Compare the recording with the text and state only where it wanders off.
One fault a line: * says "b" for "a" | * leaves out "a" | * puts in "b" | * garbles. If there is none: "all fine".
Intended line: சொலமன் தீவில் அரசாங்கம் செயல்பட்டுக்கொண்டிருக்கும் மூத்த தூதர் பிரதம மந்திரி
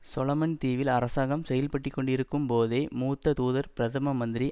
* puts in "போதே"